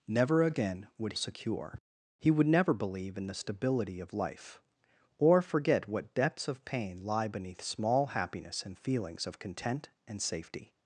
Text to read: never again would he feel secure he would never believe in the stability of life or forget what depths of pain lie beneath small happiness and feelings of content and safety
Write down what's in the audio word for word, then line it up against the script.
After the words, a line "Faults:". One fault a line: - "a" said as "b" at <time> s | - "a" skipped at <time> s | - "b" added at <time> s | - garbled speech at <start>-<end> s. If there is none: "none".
never again would secure he would never believe in the stability of life or forget what depths of pain lie beneath small happiness and feelings of content and safety
Faults:
- "he feel" skipped at 1.1 s